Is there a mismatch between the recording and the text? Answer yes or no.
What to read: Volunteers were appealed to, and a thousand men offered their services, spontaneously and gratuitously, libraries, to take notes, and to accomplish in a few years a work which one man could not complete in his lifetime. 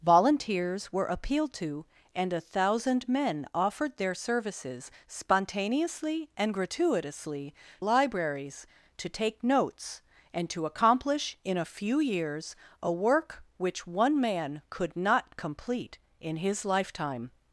no